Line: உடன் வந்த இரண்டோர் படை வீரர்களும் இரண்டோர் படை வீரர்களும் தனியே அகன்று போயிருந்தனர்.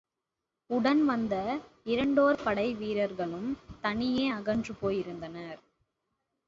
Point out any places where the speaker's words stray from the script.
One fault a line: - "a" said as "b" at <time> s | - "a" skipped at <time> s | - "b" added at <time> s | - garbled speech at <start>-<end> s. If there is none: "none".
- "இரண்டோர் படை வீரர்களும்" skipped at 3.5 s